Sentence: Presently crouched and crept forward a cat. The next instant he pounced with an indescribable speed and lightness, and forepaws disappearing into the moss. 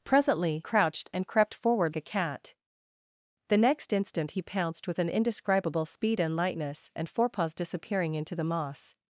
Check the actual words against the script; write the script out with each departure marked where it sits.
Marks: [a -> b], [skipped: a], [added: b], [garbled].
Presently crouched and crept forward a cat. The next instant he pounced with an indescribable speed and lightness, and forepaws disappearing into the moss.